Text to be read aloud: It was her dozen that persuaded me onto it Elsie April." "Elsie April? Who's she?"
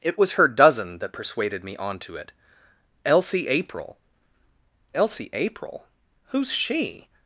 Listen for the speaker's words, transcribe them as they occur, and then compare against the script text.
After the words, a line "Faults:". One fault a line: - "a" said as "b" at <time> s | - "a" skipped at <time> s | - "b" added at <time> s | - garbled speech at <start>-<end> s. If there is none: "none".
It was her dozen that persuaded me onto it Elsie April." "Elsie April? Who's she?"
Faults:
none